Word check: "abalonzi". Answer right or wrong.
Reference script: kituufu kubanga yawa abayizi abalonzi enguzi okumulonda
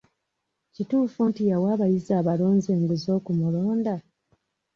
right